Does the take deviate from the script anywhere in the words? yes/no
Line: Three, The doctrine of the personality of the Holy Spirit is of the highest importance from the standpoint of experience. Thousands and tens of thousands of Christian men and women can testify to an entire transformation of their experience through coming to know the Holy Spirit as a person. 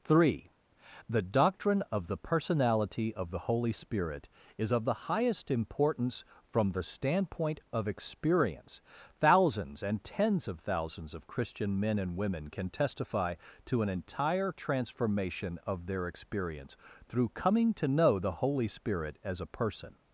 no